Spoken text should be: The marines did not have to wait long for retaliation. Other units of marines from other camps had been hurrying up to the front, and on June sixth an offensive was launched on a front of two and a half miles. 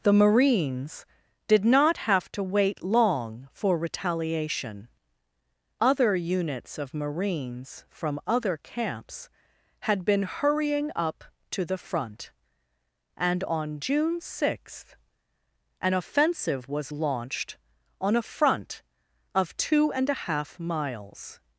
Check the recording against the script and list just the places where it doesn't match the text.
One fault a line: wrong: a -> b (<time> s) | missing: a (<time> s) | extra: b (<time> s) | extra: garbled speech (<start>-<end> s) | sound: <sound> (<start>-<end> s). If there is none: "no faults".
no faults